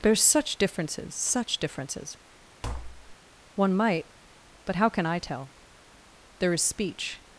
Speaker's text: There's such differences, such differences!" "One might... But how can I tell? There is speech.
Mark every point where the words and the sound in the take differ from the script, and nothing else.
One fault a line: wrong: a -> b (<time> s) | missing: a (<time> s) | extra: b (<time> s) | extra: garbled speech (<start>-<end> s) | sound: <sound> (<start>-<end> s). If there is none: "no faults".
sound: tap (2.6-3.2 s)